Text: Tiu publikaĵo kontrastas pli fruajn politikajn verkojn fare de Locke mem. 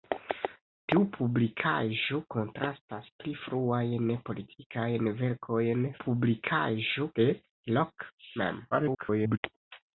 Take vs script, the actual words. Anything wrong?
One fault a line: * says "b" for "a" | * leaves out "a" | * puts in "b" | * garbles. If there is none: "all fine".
* says "publikaĵo" for "fare"
* garbles